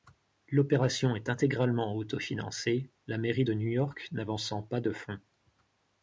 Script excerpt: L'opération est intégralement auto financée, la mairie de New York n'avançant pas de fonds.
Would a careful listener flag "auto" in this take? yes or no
no